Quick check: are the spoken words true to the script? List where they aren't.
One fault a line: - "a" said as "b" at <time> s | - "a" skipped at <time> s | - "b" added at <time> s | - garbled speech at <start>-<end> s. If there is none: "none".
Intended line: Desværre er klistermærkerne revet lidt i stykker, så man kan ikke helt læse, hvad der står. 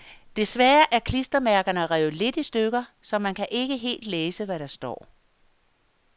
none